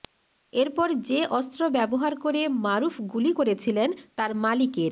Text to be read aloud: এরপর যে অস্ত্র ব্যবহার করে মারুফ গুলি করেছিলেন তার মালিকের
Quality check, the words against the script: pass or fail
pass